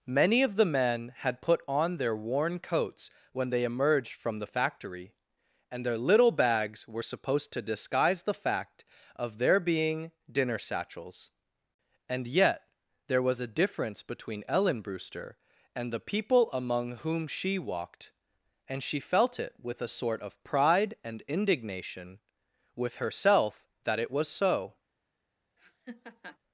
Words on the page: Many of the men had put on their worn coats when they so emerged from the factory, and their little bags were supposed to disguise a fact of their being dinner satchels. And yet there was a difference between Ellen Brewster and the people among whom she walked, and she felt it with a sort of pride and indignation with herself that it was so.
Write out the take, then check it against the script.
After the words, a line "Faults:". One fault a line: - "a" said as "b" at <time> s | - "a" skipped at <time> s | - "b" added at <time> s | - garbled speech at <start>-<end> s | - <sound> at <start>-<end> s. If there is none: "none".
Many of the men had put on their worn coats when they emerged from the factory, and their little bags were supposed to disguise the fact of their being dinner satchels. And yet there was a difference between Ellen Brewster and the people among whom she walked, and she felt it with a sort of pride and indignation with herself that it was so.
Faults:
- "so" skipped at 3.6 s
- "a" said as "the" at 8.2 s
- laugh at 25.6-26.4 s